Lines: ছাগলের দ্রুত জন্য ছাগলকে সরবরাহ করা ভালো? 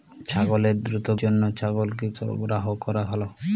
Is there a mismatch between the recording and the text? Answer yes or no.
no